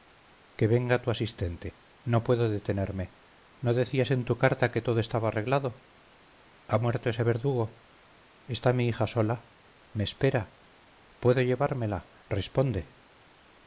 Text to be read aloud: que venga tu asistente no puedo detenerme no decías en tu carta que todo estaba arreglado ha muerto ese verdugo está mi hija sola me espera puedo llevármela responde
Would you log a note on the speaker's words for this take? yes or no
no